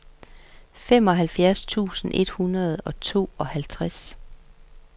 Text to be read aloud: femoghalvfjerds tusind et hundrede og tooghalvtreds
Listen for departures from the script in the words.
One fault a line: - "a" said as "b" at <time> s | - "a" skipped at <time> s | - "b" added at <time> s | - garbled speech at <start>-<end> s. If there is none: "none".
none